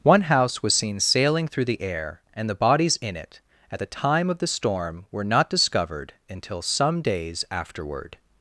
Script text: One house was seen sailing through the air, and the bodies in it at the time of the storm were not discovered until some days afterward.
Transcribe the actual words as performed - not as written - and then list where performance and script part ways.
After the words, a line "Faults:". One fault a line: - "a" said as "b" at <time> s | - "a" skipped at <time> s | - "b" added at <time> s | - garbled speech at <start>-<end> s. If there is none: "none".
One house was seen sailing through the air, and the bodies in it at the time of the storm were not discovered until some days afterward.
Faults:
none